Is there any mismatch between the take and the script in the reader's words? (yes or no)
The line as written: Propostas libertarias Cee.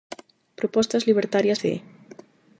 no